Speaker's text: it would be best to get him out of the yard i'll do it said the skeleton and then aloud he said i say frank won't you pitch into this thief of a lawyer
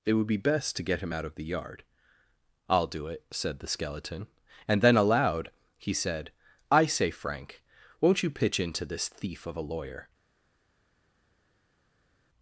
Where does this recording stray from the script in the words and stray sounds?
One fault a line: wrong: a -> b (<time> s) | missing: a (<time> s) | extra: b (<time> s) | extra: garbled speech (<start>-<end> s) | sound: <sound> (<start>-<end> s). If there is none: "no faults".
no faults